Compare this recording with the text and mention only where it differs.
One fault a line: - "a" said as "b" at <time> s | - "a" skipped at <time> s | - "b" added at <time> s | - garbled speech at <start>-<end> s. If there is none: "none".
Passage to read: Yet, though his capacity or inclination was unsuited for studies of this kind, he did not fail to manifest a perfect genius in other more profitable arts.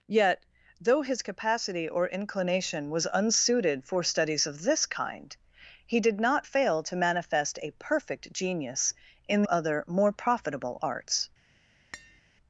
none